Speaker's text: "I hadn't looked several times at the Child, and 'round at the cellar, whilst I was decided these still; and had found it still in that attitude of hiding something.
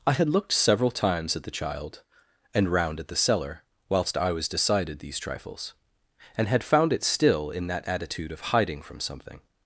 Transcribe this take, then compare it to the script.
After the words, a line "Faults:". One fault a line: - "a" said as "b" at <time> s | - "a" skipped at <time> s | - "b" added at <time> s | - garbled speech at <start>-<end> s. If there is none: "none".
"I had looked several times at the Child, and 'round at the cellar, whilst I was decided these trifles; and had found it still in that attitude of hiding from something.
Faults:
- "hadn't" said as "had" at 0.1 s
- "still" said as "trifles" at 5.2 s
- "from" added at 8.8 s